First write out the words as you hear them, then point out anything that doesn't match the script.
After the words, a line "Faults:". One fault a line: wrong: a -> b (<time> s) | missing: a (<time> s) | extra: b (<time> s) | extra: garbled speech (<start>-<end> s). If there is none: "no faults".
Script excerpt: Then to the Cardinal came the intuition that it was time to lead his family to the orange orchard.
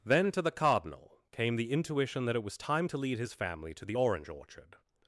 Then to the Cardinal came the intuition that it was time to lead his family to the orange orchard.
Faults:
no faults